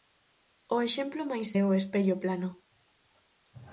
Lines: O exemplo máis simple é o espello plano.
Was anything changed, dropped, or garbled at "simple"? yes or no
yes